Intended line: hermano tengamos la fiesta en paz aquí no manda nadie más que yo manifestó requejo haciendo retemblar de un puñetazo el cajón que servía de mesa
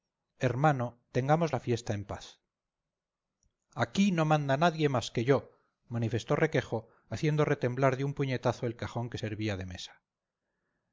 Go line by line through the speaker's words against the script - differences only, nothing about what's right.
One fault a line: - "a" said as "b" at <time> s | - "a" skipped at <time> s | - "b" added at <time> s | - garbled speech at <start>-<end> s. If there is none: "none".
none